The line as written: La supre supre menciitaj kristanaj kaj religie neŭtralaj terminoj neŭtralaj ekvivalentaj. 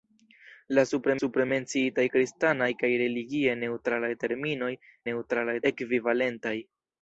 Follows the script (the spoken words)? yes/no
yes